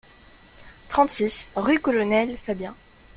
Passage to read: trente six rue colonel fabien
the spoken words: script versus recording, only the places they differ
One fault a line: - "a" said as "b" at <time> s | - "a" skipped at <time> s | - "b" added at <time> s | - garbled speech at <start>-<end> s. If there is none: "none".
none